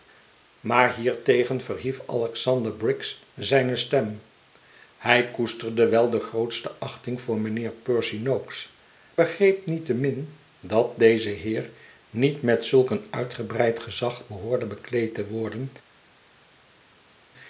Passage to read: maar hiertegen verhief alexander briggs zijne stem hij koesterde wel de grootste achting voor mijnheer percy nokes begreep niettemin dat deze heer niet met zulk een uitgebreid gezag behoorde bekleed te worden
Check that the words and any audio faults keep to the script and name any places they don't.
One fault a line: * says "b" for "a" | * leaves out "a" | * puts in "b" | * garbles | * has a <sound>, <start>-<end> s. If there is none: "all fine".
all fine